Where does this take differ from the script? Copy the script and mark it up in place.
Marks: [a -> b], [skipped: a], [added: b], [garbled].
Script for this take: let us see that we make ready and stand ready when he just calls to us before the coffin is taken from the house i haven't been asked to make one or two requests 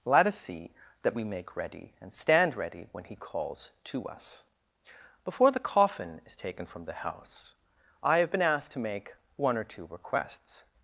let us see that we make ready and stand ready when he [skipped: just] calls to us before the coffin is taken from the house i [haven't -> have] been asked to make one or two requests